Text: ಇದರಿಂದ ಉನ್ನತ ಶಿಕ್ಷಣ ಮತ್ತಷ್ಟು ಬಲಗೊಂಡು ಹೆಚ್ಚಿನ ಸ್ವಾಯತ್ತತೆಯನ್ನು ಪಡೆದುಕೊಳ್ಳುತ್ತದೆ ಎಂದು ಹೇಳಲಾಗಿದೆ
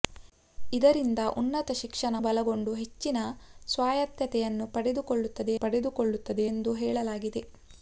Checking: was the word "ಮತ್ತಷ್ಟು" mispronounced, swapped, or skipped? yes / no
yes